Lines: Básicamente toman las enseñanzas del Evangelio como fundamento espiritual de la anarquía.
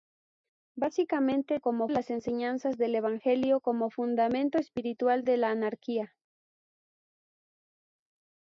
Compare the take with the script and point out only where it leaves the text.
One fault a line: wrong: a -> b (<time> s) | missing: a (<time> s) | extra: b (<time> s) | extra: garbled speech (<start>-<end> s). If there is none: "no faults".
wrong: toman -> como (1.6 s)